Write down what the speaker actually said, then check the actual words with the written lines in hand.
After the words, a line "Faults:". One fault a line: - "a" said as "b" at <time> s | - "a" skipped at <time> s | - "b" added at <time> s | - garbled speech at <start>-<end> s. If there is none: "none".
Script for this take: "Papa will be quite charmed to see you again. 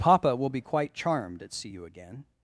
"Papa will be quite charmed at see you again.
Faults:
- "to" said as "at" at 1.4 s